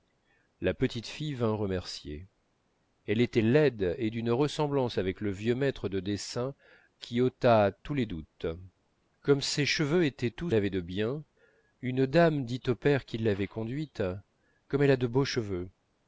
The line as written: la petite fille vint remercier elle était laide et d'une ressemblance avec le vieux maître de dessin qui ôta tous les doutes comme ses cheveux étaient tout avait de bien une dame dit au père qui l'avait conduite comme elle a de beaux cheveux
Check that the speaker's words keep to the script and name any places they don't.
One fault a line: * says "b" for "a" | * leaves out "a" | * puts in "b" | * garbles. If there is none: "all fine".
all fine